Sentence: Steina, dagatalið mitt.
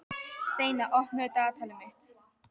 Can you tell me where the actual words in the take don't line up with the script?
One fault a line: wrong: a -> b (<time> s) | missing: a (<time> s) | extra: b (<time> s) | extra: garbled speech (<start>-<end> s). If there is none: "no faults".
extra: opnaðu (1.0 s)